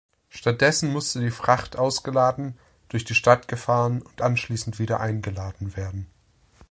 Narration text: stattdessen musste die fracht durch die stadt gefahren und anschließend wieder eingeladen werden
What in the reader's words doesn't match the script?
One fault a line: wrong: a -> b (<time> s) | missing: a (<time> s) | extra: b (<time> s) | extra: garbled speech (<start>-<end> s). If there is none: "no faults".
extra: ausgeladen (1.8 s)